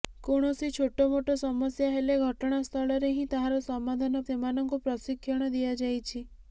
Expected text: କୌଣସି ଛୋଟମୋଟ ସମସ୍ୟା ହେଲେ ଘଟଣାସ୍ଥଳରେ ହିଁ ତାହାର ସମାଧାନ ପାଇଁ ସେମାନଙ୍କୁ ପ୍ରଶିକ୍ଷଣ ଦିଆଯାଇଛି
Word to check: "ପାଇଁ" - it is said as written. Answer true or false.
false